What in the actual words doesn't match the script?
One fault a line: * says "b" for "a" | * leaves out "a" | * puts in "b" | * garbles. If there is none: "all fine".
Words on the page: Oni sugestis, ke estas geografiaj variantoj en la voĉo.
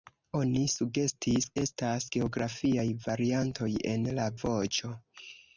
* leaves out "ke"